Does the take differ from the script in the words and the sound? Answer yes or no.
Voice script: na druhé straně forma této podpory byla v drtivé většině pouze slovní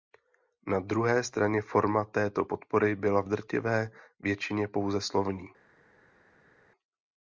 no